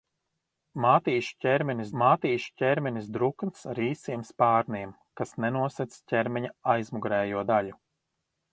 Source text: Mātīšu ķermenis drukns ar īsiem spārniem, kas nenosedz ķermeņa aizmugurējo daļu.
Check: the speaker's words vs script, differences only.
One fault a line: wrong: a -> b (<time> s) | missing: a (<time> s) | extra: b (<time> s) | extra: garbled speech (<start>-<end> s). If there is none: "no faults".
extra: mātīšu ķermenis (2.0 s)